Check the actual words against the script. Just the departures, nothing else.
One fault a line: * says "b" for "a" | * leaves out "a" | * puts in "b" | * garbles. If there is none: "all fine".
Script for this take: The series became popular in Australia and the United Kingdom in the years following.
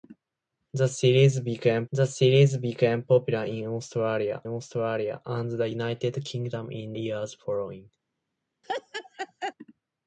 * puts in "the series became"
* puts in "Australia"
* leaves out "the"